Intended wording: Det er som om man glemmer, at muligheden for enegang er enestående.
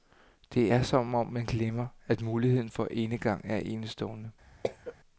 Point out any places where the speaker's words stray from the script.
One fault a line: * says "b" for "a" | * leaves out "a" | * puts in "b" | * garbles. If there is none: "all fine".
all fine